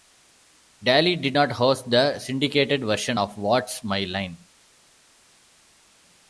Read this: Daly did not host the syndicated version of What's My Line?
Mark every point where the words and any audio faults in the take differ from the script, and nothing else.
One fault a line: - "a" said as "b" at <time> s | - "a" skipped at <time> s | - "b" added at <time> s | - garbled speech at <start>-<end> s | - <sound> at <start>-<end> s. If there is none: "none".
none